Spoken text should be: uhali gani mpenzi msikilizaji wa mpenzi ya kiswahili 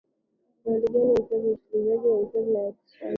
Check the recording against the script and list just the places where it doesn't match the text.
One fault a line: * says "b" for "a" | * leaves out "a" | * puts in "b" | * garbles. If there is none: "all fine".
all fine